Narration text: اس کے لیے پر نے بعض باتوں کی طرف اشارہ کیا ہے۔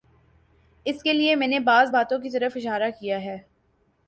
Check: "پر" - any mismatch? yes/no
yes